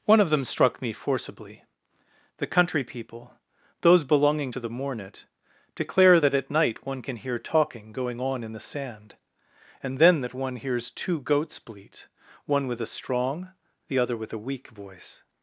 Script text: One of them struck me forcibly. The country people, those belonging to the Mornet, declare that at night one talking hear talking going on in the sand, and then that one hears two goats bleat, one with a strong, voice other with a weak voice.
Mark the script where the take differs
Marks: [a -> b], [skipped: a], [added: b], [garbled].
One of them struck me forcibly. The country people, those belonging to the Mornet, declare that at night one [talking -> can] hear talking going on in the sand, and then that one hears two goats bleat, one with a strong, [voice -> the] other with a weak voice.